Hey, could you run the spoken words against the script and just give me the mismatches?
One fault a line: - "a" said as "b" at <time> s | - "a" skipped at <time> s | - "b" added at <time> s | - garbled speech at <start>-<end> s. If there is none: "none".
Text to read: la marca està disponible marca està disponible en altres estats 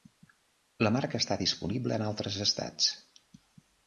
- "marca està disponible" skipped at 2.0 s